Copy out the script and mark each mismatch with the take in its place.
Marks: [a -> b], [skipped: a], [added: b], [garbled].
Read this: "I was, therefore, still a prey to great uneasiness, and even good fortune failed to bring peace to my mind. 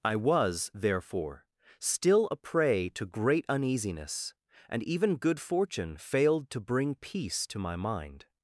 "I was, therefore, still a prey to great uneasiness, and even good fortune failed to bring peace to my mind.